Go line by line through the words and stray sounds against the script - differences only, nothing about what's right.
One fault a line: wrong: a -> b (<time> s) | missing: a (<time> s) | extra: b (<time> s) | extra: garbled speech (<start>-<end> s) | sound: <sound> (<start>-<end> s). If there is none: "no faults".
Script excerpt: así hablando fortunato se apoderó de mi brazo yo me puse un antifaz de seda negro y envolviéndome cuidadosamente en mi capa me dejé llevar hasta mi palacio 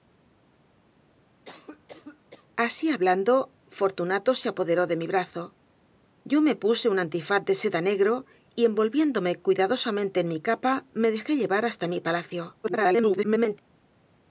sound: cough (1.5-2.5 s)
extra: garbled speech (12.6-13.6 s)